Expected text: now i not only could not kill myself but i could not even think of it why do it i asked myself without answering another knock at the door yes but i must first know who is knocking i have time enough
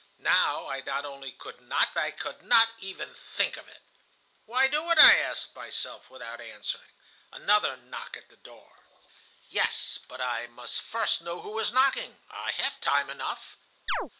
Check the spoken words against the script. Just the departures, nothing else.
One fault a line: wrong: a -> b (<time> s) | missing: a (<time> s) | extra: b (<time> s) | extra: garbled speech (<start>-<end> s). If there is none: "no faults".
missing: kill myself but (1.9 s)